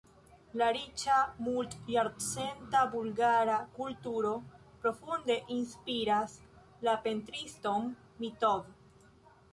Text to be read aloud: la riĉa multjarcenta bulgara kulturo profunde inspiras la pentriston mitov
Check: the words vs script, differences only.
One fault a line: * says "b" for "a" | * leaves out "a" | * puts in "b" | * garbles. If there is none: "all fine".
all fine